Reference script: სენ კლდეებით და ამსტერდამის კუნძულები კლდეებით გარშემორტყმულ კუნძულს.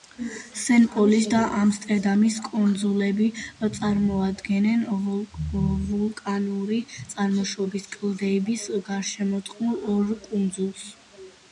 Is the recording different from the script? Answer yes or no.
yes